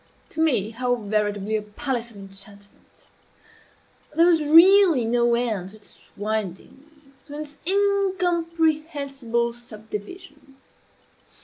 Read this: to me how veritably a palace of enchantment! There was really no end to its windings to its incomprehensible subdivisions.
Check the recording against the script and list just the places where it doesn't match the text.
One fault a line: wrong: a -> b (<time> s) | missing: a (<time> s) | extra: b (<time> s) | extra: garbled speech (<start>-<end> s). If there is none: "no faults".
no faults